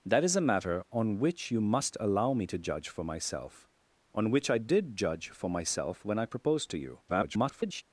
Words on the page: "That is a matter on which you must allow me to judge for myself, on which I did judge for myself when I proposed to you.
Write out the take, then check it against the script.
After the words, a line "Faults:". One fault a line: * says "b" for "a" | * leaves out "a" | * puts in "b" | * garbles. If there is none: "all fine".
"That is a matter on which you must allow me to judge for myself, on which I did judge for myself when I proposed to you. [garbled]
Faults:
* garbles